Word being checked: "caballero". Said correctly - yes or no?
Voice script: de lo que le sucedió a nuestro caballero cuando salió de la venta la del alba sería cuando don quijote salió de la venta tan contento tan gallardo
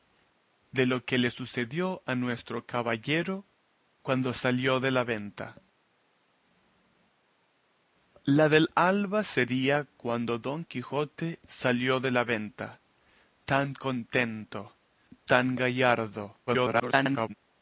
yes